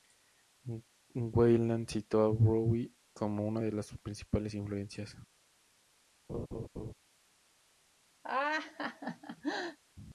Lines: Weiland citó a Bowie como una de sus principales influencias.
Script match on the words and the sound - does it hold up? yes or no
no